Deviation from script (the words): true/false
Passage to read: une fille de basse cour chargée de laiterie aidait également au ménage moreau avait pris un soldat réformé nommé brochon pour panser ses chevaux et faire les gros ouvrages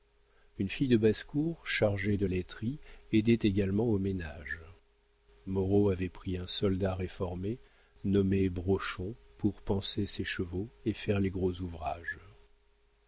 false